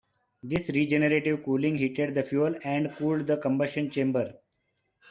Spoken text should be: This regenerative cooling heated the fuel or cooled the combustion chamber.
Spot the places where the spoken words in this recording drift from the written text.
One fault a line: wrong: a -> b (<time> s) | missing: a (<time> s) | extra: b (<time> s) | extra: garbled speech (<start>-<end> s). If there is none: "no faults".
wrong: or -> and (2.7 s)